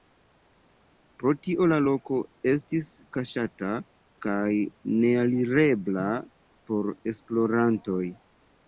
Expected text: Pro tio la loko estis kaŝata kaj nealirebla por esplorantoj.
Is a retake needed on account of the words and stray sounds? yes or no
no